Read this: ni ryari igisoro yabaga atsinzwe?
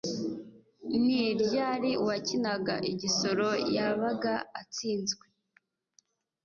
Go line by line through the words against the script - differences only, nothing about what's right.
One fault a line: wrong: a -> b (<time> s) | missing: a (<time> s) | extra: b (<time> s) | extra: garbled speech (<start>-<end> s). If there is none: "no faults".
extra: uwakinaga (2.0 s)